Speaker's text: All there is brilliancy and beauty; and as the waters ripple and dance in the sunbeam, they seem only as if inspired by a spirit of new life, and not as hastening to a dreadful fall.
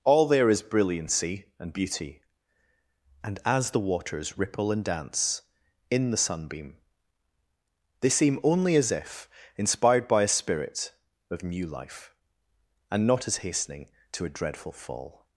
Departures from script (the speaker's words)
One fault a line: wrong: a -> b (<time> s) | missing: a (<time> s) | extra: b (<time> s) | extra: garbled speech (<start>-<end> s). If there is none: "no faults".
no faults